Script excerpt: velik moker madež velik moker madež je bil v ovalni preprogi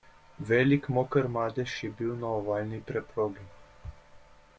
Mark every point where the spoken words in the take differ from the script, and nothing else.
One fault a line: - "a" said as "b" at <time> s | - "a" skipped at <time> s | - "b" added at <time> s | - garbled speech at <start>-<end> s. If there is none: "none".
- "velik moker madež" skipped at 1.8 s
- "v" said as "na" at 2.1 s